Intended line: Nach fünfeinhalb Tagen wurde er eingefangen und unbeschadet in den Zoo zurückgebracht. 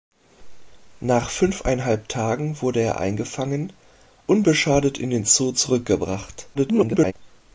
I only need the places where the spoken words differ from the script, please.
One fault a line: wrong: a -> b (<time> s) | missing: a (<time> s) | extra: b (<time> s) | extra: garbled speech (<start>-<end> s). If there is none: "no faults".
missing: und (3.7 s)
extra: garbled speech (6.5-7.1 s)